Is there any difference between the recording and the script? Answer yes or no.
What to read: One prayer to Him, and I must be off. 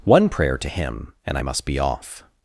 no